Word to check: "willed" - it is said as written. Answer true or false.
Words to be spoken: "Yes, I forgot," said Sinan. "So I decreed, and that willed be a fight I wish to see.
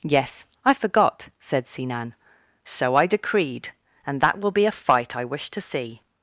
false